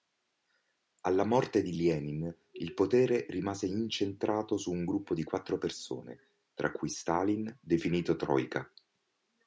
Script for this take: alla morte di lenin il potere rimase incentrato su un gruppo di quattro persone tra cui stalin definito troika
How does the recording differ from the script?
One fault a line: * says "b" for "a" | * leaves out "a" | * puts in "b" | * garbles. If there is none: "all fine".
all fine